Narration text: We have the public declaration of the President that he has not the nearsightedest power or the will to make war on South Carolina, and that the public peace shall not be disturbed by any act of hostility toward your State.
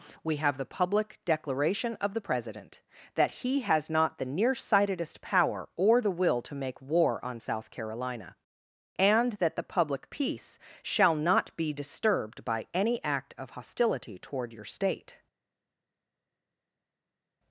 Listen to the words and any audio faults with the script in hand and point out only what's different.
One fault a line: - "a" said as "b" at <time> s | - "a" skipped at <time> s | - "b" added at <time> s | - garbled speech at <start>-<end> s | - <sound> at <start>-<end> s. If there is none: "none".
none